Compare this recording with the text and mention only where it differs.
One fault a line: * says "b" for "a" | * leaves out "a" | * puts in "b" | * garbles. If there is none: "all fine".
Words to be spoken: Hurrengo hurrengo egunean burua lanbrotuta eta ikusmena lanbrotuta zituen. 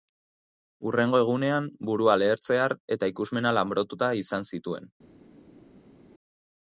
* leaves out "hurrengo"
* says "lehertzear" for "lanbrotuta"
* puts in "izan"